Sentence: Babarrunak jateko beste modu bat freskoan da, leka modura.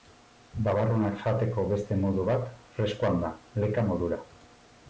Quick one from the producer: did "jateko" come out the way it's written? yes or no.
yes